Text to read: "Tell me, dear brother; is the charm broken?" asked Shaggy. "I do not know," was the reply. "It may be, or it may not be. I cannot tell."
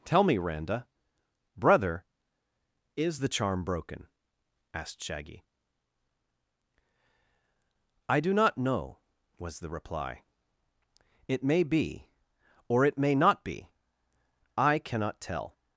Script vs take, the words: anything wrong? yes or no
yes